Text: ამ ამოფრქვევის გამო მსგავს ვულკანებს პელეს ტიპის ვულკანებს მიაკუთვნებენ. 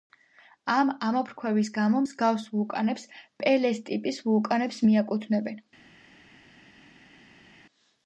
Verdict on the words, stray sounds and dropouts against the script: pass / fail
pass